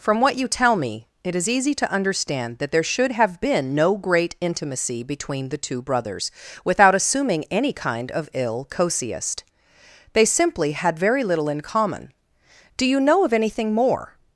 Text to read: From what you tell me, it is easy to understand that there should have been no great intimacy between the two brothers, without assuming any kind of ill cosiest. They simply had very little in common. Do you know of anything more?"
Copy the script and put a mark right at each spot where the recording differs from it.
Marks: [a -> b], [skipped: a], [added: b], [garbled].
From what you tell me, it is easy to understand that there should have been no great intimacy between the two brothers, without assuming any kind of ill cosiest. They simply had very little in common. Do you know of anything more?"